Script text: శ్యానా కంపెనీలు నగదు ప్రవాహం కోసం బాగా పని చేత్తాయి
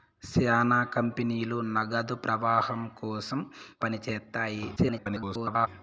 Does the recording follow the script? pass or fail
fail